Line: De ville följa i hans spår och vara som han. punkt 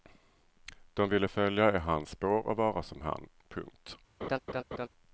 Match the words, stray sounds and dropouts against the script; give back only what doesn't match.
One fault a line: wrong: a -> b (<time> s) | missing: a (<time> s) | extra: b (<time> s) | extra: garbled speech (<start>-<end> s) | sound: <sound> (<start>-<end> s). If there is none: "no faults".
sound: laugh (4.2-4.9 s)